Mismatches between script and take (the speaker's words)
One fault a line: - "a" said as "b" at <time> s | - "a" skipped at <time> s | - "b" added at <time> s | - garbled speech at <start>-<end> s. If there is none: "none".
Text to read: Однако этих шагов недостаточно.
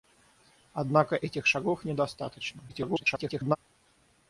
- garbled speech at 2.7-3.6 s